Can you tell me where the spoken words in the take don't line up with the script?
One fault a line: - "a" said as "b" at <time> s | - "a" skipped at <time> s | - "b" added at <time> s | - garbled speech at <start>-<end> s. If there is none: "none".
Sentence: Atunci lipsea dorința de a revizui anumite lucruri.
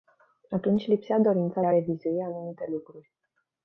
- "de" skipped at 1.6 s